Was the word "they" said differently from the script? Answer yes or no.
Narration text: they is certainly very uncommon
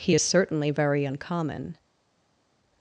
yes